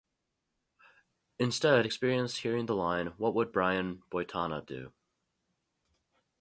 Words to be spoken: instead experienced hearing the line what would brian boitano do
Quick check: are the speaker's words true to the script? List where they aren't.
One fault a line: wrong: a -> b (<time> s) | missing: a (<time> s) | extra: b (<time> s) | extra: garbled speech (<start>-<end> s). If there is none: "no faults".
no faults